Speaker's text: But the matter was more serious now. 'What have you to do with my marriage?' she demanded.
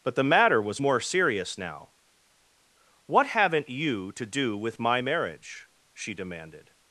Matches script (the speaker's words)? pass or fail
fail